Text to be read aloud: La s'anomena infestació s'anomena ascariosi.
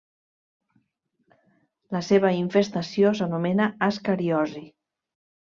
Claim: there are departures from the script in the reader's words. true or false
true